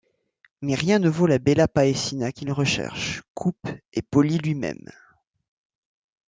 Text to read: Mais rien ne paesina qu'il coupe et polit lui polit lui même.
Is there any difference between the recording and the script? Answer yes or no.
yes